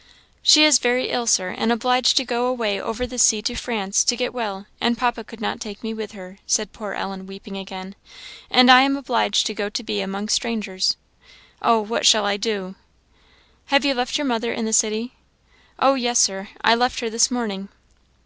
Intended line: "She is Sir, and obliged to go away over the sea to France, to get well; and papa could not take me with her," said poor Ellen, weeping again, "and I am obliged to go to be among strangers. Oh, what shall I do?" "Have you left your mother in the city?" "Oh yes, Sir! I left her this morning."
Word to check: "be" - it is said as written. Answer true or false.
true